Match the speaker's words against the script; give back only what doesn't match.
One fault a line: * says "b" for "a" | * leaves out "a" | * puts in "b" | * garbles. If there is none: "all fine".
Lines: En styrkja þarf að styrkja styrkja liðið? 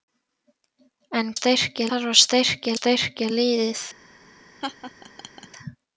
all fine